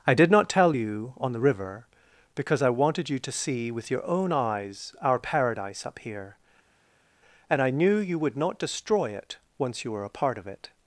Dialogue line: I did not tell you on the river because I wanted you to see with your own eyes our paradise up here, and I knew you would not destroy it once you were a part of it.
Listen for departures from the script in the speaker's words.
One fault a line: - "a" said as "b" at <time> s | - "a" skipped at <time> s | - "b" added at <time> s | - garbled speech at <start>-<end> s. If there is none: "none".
none